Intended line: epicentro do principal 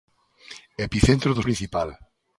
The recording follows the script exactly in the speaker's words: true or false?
true